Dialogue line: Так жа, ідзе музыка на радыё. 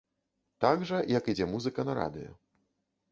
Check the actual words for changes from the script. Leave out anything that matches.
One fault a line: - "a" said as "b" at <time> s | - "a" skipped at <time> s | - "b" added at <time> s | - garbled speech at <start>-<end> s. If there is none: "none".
- "як" added at 1.2 s